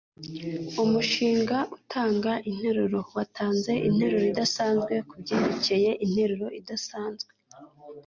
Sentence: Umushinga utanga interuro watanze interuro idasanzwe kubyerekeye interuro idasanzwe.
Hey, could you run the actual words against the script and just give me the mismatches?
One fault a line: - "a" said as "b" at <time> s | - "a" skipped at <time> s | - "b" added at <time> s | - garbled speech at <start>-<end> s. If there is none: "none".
none